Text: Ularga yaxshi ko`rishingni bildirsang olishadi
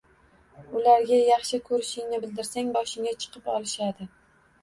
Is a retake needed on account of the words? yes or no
yes